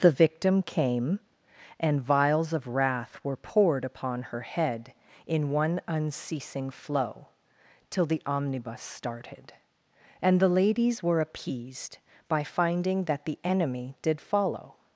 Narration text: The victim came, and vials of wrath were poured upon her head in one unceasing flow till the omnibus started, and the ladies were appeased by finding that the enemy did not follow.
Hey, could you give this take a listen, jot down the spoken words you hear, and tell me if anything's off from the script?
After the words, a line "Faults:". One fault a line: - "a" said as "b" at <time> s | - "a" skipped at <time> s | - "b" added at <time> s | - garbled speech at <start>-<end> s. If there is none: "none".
The victim came, and vials of wrath were poured upon her head in one unceasing flow till the omnibus started, and the ladies were appeased by finding that the enemy did follow.
Faults:
- "not" skipped at 14.2 s